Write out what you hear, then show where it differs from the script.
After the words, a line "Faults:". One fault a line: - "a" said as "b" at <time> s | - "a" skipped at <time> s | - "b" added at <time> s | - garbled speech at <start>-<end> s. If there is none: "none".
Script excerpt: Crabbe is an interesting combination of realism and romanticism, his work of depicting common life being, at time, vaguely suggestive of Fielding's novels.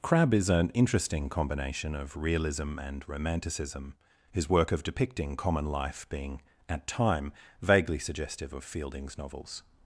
Crabbe is an interesting combination of realism and romanticism, his work of depicting common life being, at time, vaguely suggestive of Fielding's novels.
Faults:
none